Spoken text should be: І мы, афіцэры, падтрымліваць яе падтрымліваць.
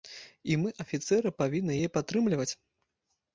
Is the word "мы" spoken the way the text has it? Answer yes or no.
yes